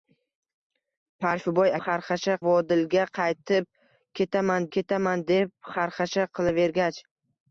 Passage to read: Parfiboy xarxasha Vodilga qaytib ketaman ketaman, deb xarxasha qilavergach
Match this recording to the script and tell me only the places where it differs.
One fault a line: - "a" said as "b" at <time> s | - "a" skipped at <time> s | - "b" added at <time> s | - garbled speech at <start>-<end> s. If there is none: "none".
none